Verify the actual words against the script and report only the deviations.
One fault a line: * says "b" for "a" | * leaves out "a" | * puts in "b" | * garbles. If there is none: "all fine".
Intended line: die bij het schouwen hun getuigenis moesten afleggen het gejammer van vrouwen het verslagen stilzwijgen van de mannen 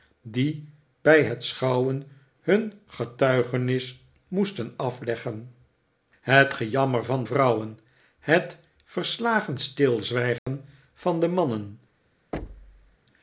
all fine